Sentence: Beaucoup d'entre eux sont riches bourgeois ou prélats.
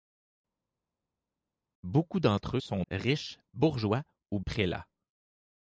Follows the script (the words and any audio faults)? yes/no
yes